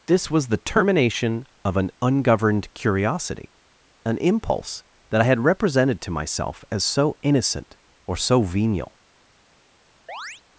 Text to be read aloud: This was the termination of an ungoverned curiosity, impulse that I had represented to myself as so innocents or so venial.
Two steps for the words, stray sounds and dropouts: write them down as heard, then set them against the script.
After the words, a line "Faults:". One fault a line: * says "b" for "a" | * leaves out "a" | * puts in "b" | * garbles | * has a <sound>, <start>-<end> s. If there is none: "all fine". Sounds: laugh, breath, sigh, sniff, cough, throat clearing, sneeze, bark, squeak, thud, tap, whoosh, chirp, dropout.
This was the termination of an ungoverned curiosity, an impulse that I had represented to myself as so innocent or so venial.
Faults:
* puts in "an"
* says "innocent" for "innocents"
* has a chirp, 10.1-10.4 s